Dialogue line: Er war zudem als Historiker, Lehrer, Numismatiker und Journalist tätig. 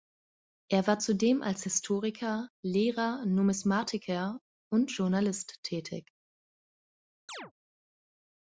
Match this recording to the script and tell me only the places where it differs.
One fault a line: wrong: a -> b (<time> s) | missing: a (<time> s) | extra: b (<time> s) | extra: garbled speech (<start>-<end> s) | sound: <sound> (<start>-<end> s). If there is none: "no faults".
sound: chirp (7.3-7.5 s)